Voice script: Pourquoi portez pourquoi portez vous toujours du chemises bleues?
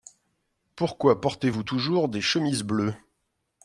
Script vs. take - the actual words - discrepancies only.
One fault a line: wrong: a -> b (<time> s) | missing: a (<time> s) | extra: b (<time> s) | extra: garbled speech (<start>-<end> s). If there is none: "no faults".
missing: pourquoi portez (1.5 s)
wrong: du -> des (2.1 s)